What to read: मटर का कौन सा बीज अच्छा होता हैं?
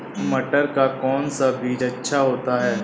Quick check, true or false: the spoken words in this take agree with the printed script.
true